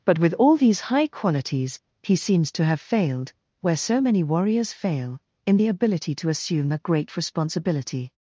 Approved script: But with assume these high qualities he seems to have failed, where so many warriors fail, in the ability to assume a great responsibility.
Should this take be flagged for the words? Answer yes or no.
yes